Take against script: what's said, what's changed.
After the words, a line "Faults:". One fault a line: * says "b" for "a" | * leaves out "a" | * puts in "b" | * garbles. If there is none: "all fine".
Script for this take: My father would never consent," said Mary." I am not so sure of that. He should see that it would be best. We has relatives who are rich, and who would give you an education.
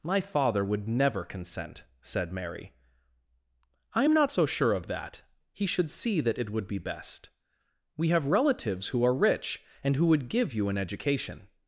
My father would never consent," said Mary." I am not so sure of that. He should see that it would be best. We have relatives who are rich, and who would give you an education.
Faults:
* says "have" for "has"